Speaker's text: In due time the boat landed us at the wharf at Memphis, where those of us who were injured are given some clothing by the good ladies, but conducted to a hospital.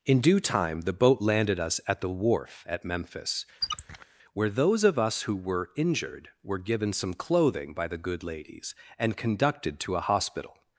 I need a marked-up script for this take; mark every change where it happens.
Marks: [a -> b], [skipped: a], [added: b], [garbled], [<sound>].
In due time the boat landed us at the wharf at Memphis, [squeak] where those of us who were injured [are -> were] given some clothing by the good ladies, [but -> and] conducted to a hospital.